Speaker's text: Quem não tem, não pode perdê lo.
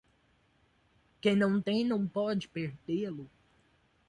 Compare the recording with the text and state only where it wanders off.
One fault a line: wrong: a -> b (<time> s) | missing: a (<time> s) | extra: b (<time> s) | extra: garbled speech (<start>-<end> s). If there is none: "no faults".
no faults